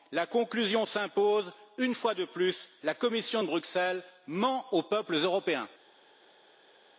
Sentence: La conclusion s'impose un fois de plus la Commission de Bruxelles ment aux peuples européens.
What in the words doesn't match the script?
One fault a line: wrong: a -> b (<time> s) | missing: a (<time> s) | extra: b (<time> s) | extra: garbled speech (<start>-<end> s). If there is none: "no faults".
wrong: un -> une (1.8 s)